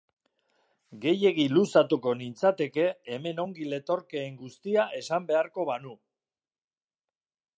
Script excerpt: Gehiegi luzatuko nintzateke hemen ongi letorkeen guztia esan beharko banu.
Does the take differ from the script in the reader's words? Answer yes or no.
no